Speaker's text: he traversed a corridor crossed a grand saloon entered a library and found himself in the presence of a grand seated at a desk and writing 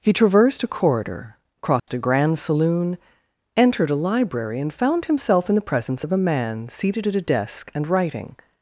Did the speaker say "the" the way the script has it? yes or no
yes